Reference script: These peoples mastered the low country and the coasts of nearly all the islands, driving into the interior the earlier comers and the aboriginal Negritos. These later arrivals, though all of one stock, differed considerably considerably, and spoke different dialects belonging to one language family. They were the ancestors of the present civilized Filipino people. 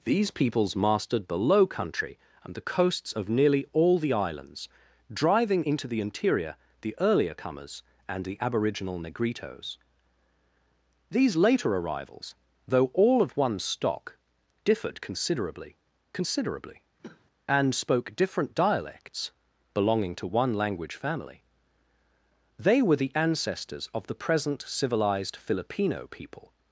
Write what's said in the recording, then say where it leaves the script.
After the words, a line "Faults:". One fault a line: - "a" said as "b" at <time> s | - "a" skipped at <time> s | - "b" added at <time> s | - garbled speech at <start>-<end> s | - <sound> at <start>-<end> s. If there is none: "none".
These peoples mastered the low country and the coasts of nearly all the islands, driving into the interior the earlier comers and the aboriginal Negritos. These later arrivals, though all of one stock, differed considerably considerably, and spoke different dialects belonging to one language family. They were the ancestors of the present civilized Filipino people.
Faults:
- cough at 17.0-17.2 s